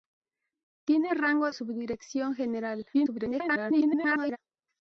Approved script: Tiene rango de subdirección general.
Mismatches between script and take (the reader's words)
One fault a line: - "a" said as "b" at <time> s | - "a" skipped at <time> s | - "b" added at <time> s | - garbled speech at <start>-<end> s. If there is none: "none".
- "de" skipped at 1.5 s
- garbled speech at 2.9-4.4 s